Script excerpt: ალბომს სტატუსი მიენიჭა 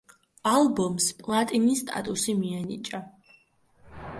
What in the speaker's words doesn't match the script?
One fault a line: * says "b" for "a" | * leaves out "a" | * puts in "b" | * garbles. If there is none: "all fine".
* puts in "პლატინის"